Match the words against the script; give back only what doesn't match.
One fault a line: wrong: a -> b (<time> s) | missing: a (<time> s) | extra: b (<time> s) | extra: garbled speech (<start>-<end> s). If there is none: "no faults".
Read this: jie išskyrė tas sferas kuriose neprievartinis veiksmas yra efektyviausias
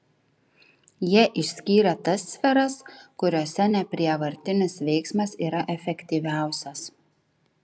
no faults